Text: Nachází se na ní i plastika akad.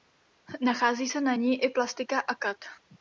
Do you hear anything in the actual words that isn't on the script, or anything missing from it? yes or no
no